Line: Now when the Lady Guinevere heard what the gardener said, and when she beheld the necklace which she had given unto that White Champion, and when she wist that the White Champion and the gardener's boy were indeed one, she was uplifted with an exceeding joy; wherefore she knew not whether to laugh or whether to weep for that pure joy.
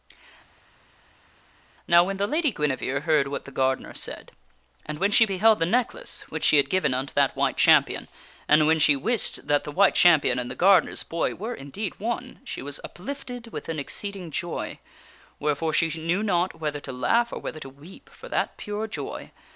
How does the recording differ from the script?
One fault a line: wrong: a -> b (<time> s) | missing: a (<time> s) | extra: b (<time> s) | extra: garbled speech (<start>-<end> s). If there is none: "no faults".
no faults